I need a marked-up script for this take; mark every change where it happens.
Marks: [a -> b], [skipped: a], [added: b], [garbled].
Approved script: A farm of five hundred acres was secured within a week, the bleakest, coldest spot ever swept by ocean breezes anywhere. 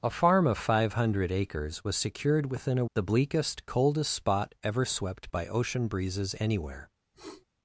A farm of five hundred acres was secured within a [skipped: week,] the bleakest, coldest spot ever swept by ocean breezes anywhere.